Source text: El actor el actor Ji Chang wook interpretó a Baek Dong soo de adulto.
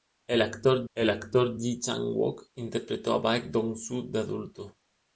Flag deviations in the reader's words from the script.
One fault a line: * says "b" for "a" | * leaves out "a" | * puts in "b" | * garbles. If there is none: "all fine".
all fine